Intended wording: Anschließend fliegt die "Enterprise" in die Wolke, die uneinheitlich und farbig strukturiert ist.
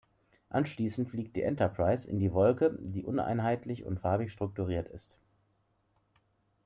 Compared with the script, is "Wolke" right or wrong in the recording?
right